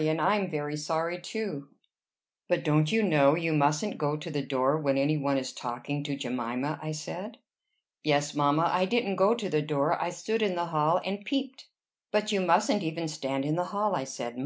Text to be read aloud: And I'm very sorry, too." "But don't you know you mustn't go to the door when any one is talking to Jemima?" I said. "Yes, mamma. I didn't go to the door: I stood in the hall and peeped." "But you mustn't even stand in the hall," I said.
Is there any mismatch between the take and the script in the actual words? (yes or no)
no